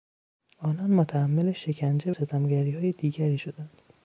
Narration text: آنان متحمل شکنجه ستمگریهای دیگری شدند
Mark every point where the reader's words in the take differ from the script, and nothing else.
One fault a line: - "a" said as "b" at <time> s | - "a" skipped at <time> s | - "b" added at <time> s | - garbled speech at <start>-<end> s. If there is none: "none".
none